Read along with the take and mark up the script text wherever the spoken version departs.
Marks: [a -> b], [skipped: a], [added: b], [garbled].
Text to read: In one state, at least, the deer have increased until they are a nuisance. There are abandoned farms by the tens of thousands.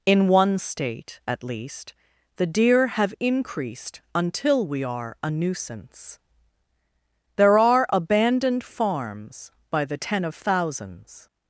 In one state, at least, the deer have increased until [they -> we] are a nuisance. There are abandoned farms by the [tens -> ten] of thousands.